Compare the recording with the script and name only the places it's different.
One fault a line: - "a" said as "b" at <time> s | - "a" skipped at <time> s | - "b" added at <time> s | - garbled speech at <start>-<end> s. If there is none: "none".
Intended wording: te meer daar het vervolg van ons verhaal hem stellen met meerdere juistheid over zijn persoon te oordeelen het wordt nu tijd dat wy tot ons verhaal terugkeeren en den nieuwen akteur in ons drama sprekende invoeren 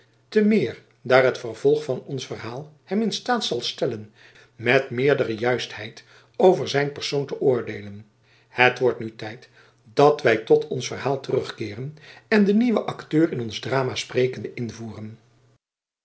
- "in staat zal" added at 3.0 s